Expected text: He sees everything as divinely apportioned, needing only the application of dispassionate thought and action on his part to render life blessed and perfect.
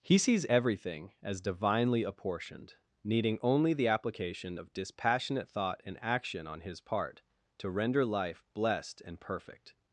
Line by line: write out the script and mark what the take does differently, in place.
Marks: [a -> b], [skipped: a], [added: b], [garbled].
He sees everything as divinely apportioned, needing only the application of dispassionate thought and action on his part to render life blessed and perfect.